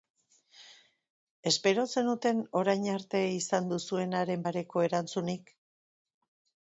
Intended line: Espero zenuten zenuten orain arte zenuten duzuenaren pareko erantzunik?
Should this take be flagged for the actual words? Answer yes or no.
yes